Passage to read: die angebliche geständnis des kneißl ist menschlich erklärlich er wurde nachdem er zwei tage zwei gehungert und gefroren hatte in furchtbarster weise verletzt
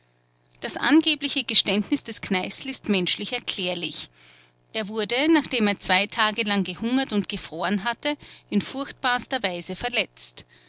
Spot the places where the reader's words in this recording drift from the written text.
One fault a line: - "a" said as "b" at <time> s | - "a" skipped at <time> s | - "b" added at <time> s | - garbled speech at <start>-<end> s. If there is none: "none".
- "die" said as "das" at 0.6 s
- "zwei" said as "lang" at 6.4 s